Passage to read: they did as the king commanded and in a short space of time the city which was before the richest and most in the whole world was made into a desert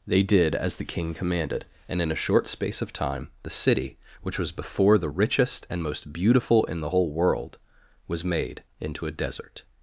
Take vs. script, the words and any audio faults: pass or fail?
fail